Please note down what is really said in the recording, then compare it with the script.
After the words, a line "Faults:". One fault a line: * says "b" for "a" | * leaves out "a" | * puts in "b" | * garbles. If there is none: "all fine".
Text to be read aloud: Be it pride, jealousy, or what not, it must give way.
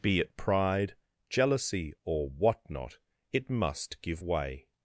Be it pride, jealousy, or what not, it must give way.
Faults:
all fine